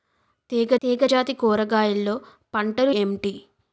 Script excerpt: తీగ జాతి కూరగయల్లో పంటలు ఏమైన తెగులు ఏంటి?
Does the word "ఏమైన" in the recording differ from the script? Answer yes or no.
yes